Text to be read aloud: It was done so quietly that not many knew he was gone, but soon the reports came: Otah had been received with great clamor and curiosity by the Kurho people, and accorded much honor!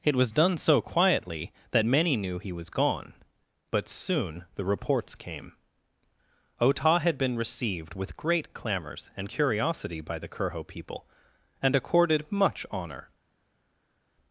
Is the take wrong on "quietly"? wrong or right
right